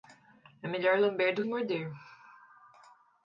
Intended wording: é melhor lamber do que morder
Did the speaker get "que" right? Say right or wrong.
wrong